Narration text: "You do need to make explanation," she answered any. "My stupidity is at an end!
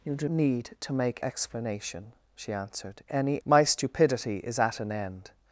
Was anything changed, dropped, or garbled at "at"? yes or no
no